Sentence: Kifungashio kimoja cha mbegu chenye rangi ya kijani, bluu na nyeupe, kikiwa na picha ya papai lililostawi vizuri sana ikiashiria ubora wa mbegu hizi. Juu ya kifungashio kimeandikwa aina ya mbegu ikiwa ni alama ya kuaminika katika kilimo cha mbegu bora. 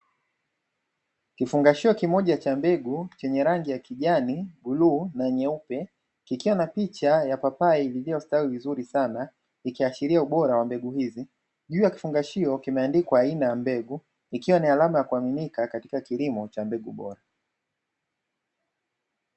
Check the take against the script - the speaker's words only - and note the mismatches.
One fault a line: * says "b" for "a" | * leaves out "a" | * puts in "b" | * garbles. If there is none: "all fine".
all fine